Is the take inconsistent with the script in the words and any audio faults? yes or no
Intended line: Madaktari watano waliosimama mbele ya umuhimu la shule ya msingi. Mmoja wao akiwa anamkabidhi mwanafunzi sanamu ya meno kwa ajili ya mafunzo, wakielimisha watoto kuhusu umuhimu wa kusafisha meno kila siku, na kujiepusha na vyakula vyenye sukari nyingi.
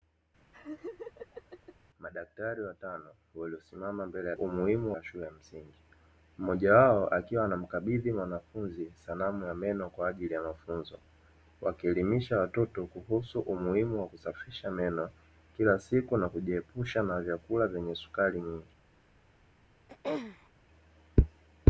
yes